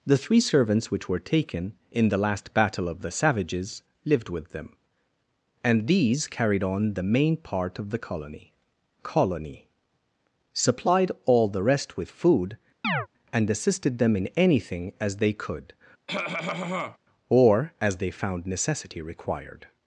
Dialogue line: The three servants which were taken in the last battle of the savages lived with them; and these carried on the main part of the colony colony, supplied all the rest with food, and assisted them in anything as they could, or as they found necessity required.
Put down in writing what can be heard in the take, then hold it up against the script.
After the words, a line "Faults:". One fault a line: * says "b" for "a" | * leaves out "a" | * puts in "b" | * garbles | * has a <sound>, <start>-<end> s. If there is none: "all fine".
The three servants which were taken in the last battle of the savages lived with them; and these carried on the main part of the colony colony, supplied all the rest with food, and assisted them in anything as they could, or as they found necessity required.
Faults:
* has a chirp, 12.8-13.1 s
* has a cough, 16.1-17.0 s